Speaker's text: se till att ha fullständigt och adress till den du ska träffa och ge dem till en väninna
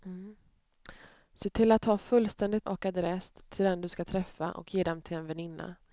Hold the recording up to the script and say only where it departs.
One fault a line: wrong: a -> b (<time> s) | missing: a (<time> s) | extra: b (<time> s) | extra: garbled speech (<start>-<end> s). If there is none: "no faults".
no faults